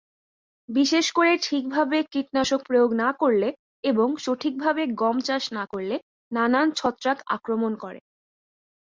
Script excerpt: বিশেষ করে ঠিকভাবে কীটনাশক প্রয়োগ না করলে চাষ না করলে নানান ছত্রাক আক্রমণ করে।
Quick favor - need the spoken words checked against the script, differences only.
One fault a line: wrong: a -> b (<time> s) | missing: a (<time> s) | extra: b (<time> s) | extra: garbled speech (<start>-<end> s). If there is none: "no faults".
extra: এবং সঠিকভাবে গম (3.8 s)